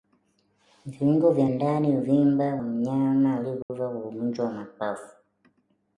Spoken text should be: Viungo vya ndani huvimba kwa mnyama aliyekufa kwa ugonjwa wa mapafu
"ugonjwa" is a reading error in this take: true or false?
false